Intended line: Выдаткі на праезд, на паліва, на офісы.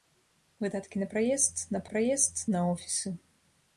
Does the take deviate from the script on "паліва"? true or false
true